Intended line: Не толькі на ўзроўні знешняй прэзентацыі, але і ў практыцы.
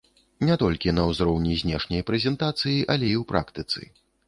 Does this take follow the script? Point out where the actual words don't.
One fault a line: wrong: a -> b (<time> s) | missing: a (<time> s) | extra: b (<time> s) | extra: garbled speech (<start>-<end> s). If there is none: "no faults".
no faults